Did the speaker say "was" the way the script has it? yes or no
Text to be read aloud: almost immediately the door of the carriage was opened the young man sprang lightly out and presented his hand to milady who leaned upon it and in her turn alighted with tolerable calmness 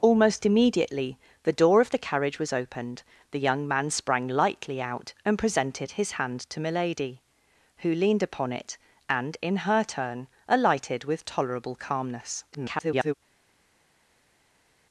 yes